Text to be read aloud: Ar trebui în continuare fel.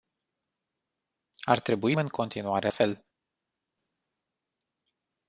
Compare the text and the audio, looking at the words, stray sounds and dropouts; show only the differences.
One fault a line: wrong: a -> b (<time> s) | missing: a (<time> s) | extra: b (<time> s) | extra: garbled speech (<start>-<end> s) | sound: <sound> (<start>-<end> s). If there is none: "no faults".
no faults